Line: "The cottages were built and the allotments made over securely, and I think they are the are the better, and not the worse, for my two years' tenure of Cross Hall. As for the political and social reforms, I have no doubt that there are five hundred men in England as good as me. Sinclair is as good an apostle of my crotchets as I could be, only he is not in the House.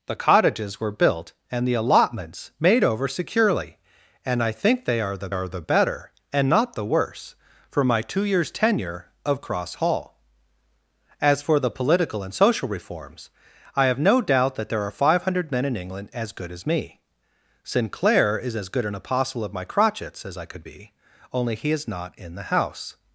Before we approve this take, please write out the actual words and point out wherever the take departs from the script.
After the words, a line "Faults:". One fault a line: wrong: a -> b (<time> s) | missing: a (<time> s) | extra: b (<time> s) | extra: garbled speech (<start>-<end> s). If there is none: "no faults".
"The cottages were built and the allotments made over securely, and I think they are the are the better, and not the worse, for my two years' tenure of Cross Hall. As for the political and social reforms, I have no doubt that there are five hundred men in England as good as me. Sinclair is as good an apostle of my crotchets as I could be, only he is not in the House.
Faults:
no faults